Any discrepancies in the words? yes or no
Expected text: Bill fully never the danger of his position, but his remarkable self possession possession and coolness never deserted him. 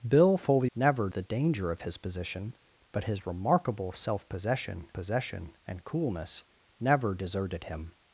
no